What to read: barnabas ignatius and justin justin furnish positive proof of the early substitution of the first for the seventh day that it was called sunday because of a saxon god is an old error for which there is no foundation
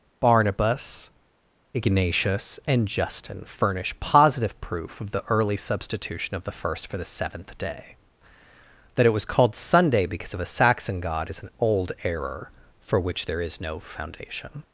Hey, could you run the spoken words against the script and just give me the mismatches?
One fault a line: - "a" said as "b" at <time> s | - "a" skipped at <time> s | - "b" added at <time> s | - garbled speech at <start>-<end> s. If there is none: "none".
- "justin" skipped at 3.4 s